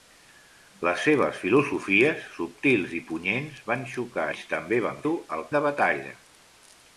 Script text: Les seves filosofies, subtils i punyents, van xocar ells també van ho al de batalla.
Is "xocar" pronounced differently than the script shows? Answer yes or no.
no